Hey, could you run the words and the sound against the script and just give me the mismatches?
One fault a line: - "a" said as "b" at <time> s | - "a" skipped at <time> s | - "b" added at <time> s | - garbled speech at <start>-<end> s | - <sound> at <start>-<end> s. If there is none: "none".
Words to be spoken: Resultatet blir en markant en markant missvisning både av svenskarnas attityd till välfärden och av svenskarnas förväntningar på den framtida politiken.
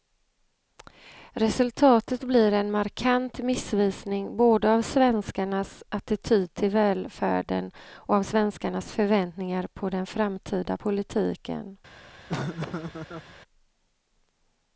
- "en markant" skipped at 3.4 s
- laugh at 12.3-13.3 s